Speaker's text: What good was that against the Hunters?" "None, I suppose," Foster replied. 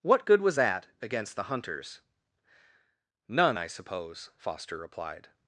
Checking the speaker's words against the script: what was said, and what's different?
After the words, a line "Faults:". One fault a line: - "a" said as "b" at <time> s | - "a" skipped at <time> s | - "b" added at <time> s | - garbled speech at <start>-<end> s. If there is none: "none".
What good was that against the Hunters?" "None, I suppose," Foster replied.
Faults:
none